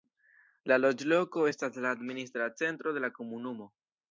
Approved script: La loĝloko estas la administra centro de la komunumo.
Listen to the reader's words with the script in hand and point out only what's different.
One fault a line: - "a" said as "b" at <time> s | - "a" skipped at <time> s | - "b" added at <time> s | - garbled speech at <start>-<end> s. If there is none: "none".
none